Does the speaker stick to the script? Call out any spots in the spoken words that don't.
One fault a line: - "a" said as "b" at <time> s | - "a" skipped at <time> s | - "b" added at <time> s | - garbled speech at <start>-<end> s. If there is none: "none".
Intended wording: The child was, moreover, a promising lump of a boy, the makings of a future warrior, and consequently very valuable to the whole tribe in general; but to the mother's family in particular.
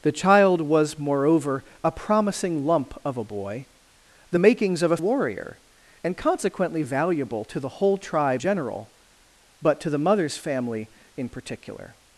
- "future" skipped at 5.0 s
- "very" skipped at 6.8 s
- "in" skipped at 8.4 s